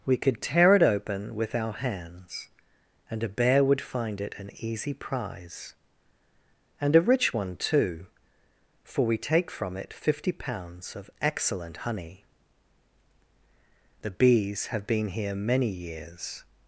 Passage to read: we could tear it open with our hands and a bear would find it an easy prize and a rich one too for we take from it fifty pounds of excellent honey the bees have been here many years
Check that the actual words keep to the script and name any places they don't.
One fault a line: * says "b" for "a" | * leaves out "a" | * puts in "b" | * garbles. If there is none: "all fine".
all fine